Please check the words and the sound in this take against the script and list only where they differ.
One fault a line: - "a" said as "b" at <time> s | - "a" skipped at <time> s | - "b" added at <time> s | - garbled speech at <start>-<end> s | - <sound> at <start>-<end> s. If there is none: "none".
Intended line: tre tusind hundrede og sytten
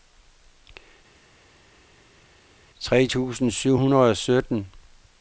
- "syv" added at 3.5 s